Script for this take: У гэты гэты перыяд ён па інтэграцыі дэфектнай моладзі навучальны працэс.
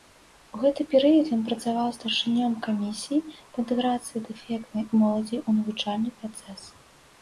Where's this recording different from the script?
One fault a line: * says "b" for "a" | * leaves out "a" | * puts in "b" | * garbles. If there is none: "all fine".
* leaves out "гэты"
* puts in "працаваў старшынём камісіі"
* puts in "ў"